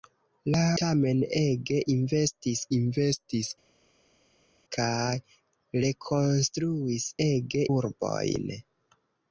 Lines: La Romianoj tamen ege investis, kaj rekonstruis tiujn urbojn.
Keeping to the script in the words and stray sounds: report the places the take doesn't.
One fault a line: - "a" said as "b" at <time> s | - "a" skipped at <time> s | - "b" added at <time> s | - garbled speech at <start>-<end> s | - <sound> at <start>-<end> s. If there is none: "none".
- "Romianoj" skipped at 0.6 s
- "investis" added at 2.8 s
- "tiujn" said as "ege" at 7.3 s